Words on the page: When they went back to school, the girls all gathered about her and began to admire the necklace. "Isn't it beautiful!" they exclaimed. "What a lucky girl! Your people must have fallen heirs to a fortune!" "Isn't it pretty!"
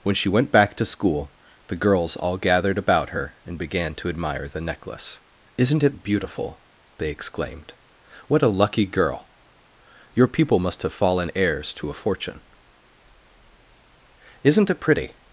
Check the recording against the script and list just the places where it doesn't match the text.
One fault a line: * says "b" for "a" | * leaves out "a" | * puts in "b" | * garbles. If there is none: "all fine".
* says "she" for "they"